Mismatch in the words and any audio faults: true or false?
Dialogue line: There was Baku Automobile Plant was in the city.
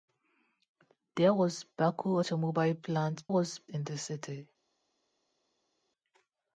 false